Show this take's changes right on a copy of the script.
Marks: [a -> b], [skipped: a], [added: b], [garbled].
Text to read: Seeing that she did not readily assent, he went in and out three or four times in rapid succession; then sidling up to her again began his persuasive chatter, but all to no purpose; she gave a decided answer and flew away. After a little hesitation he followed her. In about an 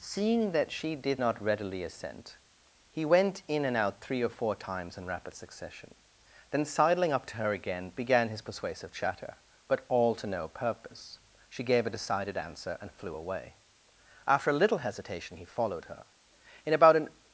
Seeing that she did not readily assent, he went in and out three or four times in rapid succession; then sidling up to her again began his persuasive chatter, but all to no purpose; she gave a decided answer and flew away. After a little hesitation he followed her. In about an